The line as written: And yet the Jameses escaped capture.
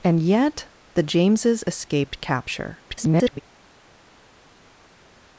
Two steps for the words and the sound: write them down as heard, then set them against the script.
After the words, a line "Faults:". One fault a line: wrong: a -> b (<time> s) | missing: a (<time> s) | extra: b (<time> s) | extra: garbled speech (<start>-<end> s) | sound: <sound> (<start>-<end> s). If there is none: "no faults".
And yet the Jameses escaped capture. [garbled]
Faults:
extra: garbled speech (2.9-3.4 s)